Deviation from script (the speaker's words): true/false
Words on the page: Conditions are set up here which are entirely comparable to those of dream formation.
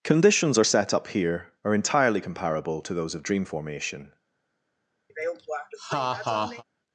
true